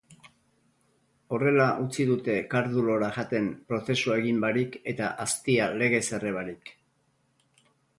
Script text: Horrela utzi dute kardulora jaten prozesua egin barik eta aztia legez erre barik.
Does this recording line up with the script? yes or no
yes